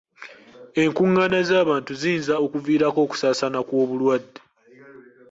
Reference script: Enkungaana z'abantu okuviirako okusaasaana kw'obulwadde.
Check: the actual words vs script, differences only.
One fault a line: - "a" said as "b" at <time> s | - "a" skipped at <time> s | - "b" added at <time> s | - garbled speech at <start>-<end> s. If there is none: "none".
- "ziyinza" added at 2.0 s